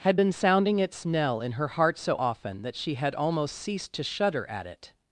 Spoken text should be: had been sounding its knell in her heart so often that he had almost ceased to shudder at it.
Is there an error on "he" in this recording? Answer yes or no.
yes